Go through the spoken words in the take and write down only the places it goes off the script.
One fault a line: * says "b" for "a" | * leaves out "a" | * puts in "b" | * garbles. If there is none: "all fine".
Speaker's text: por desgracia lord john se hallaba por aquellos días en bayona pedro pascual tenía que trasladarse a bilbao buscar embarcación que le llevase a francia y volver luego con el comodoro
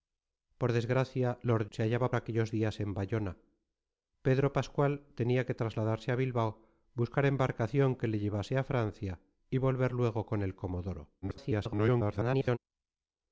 * leaves out "john"
* leaves out "por"
* garbles